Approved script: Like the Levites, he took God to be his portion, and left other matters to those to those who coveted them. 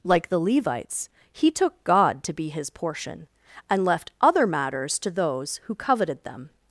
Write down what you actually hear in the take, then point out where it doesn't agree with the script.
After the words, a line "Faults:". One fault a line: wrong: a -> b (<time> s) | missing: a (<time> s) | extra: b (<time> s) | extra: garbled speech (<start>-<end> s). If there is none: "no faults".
Like the Levites, he took God to be his portion, and left other matters to those who coveted them.
Faults:
missing: to those (5.6 s)